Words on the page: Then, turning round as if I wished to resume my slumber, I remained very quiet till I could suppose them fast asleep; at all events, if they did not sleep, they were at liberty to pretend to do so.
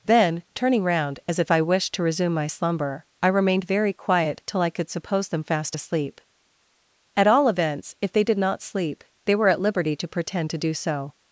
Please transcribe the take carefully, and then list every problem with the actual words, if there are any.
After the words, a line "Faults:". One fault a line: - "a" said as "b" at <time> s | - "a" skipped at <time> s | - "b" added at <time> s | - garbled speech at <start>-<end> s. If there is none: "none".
Then, turning round as if I wished to resume my slumber, I remained very quiet till I could suppose them fast asleep; at all events, if they did not sleep, they were at liberty to pretend to do so.
Faults:
none